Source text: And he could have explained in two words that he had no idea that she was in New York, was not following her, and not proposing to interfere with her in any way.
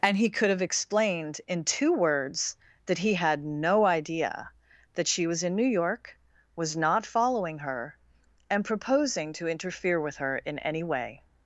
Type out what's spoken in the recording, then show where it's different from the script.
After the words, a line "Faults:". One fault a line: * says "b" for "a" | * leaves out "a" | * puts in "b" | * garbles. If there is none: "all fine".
And he could have explained in two words that he had no idea that she was in New York, was not following her, and proposing to interfere with her in any way.
Faults:
* leaves out "not"